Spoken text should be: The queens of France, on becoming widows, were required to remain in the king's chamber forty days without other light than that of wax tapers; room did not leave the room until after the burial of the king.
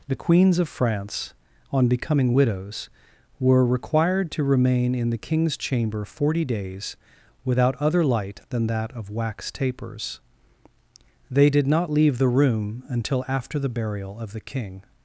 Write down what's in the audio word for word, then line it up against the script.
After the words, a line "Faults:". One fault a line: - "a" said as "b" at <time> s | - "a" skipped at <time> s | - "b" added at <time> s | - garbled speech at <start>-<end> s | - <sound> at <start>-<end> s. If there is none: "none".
The queens of France, on becoming widows, were required to remain in the king's chamber forty days without other light than that of wax tapers; they did not leave the room until after the burial of the king.
Faults:
- "room" said as "they" at 11.3 s